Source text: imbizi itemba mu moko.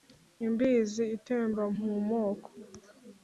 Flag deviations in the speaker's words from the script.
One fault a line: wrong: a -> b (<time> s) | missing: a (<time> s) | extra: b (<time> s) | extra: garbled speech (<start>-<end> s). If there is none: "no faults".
no faults